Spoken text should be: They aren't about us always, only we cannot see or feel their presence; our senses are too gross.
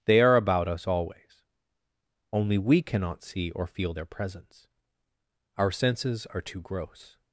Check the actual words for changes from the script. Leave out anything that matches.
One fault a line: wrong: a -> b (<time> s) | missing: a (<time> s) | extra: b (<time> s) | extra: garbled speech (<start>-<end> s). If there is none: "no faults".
wrong: aren't -> are (0.2 s)